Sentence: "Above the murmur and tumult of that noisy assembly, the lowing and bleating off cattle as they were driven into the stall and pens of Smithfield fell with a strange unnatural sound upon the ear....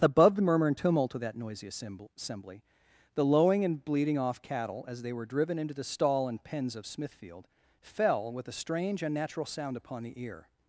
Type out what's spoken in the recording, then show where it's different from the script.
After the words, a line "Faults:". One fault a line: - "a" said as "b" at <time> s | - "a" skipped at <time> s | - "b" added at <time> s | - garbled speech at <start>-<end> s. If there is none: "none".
"Above the murmur and tumult of that noisy assembly, the lowing and bleating off cattle as they were driven into the stall and pens of Smithfield fell with a strange unnatural sound upon the ear....
Faults:
none